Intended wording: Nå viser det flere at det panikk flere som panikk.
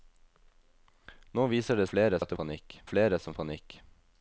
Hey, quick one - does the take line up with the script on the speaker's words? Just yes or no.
yes